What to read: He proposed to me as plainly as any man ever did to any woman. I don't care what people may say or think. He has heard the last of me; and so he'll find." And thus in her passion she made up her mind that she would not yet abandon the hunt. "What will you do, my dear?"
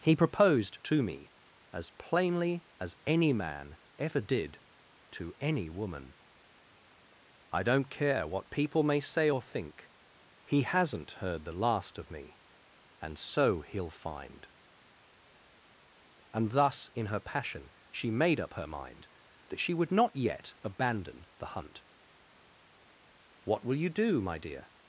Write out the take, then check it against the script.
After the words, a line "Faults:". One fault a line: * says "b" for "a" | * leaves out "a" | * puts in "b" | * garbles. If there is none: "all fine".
He proposed to me as plainly as any man ever did to any woman. I don't care what people may say or think. He hasn't heard the last of me; and so he'll find." And thus in her passion she made up her mind that she would not yet abandon the hunt. "What will you do, my dear?"
Faults:
* says "hasn't" for "has"